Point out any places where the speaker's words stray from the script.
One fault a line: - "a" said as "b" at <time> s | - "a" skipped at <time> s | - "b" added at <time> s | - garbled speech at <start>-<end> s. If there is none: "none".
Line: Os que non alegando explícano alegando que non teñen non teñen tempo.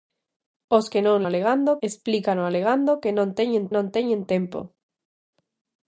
none